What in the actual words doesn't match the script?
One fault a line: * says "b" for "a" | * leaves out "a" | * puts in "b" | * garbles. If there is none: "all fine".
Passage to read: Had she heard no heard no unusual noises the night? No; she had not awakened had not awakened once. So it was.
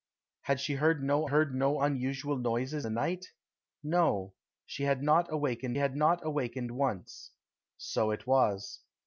all fine